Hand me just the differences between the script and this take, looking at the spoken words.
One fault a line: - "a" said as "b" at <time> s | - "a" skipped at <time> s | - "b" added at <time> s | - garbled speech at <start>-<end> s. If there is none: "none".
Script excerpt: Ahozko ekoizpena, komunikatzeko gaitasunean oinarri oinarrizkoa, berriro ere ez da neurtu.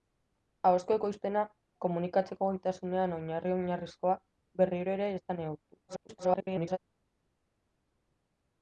- garbled speech at 5.9-6.8 s